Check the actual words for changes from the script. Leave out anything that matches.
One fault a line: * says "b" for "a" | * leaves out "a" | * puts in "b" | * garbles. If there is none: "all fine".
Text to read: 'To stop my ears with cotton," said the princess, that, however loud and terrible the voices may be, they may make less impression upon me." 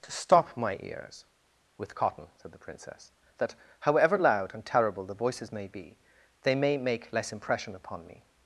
all fine